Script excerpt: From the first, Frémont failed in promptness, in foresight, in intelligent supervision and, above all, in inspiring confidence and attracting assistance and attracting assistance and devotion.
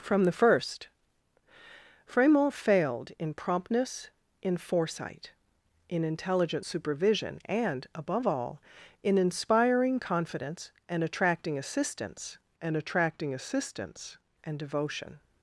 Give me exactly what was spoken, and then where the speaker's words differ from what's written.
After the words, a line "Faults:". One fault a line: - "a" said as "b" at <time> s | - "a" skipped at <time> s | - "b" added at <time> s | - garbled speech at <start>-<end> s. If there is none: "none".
From the first, Frémont failed in promptness, in foresight, in intelligent supervision and, above all, in inspiring confidence and attracting assistance and attracting assistance and devotion.
Faults:
none